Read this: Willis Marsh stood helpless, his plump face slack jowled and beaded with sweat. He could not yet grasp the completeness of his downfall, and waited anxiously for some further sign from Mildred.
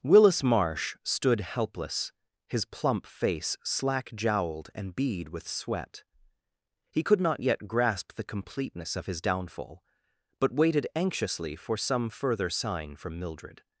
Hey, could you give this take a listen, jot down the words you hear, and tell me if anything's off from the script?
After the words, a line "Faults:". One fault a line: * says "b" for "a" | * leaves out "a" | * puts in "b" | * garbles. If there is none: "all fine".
Willis Marsh stood helpless, his plump face slack jowled and bead with sweat. He could not yet grasp the completeness of his downfall, but waited anxiously for some further sign from Mildred.
Faults:
* says "bead" for "beaded"
* says "but" for "and"